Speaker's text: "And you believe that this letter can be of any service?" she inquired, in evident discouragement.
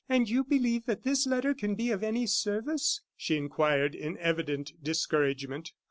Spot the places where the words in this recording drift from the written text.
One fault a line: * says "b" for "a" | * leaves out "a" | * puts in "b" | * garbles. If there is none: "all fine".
all fine